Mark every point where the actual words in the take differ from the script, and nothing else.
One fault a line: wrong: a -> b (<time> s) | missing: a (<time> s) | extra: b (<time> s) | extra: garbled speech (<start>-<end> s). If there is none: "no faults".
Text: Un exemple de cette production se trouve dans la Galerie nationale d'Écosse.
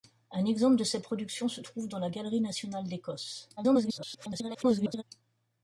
extra: garbled speech (3.6-5.0 s)